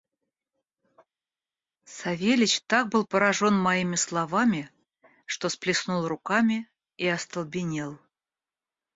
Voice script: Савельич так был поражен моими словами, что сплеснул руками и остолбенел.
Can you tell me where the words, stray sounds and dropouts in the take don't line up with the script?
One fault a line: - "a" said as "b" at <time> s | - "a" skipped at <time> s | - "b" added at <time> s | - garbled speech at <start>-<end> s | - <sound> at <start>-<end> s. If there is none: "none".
none